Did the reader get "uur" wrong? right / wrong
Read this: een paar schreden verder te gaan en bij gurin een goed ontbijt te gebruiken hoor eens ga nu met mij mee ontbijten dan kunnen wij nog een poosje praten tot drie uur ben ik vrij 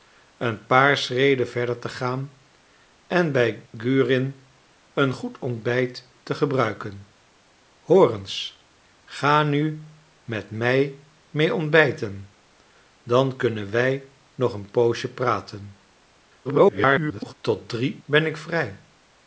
wrong